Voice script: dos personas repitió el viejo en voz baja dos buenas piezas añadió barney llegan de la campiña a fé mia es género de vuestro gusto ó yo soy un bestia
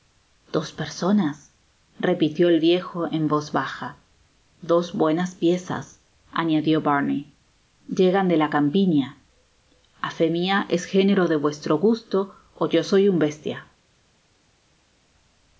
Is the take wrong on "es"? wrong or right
right